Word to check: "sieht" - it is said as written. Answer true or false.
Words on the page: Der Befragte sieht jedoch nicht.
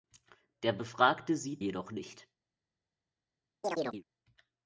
true